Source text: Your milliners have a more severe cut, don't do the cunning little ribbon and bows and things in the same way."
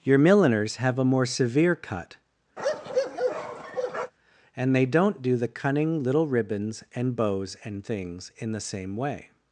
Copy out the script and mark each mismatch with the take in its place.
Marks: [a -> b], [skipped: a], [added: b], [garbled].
Your milliners have a more severe cut, [added: and they] don't do the cunning little [ribbon -> ribbons] and bows and things in the same way."